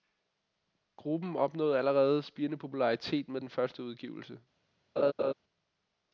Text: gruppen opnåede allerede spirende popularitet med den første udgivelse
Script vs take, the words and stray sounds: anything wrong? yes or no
yes